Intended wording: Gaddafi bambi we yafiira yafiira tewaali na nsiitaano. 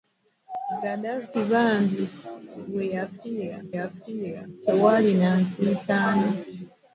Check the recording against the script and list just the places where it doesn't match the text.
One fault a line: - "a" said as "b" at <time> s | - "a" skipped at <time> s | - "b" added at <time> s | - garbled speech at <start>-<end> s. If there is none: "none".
none